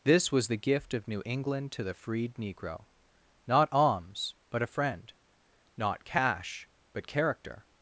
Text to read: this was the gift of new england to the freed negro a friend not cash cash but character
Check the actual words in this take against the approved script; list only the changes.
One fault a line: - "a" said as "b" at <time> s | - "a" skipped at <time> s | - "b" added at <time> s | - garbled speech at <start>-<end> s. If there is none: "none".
- "not alms but" added at 3.5 s
- "cash" skipped at 6.7 s